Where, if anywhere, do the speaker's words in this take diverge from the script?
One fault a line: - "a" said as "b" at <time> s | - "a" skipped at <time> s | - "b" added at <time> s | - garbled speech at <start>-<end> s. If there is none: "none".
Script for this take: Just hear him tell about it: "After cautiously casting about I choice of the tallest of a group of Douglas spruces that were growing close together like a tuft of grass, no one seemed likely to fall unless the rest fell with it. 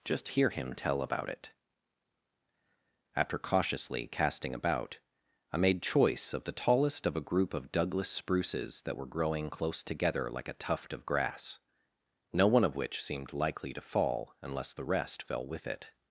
- "made" added at 5.6 s
- "of which" added at 12.6 s